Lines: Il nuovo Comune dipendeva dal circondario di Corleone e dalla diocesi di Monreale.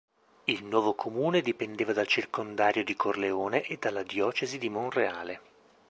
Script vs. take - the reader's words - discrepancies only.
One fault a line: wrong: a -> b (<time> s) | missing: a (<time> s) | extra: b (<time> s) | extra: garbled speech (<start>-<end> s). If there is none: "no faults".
no faults